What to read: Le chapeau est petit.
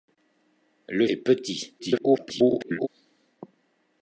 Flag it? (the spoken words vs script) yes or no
yes